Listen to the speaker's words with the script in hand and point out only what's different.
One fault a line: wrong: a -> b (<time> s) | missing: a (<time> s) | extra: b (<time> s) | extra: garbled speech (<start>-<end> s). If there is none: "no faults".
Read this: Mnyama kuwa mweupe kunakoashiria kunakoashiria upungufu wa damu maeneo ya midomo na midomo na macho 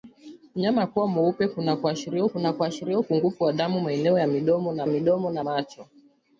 no faults